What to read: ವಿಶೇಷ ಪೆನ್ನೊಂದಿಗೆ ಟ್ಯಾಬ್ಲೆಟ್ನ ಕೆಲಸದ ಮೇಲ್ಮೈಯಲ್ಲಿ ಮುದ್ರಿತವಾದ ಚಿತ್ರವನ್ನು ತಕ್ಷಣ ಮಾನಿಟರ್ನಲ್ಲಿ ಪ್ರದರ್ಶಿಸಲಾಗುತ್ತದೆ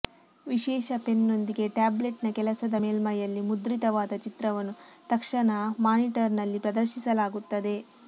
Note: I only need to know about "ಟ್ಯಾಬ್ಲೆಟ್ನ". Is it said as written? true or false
true